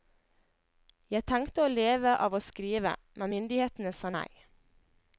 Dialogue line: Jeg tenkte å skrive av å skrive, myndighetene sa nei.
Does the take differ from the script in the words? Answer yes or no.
yes